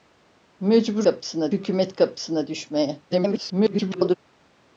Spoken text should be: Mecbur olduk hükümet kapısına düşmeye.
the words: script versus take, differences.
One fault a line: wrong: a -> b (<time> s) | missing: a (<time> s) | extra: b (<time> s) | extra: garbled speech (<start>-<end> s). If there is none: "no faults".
wrong: olduk -> kapısına (1.0 s)
extra: garbled speech (3.1-4.2 s)